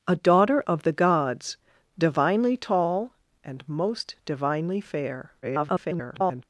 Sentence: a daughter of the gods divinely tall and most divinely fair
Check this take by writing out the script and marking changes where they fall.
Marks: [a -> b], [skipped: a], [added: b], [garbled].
a daughter of the gods divinely tall and most divinely fair [garbled]